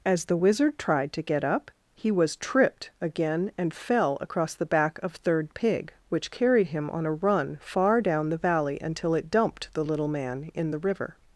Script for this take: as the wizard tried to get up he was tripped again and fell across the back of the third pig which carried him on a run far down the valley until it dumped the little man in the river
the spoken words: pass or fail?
fail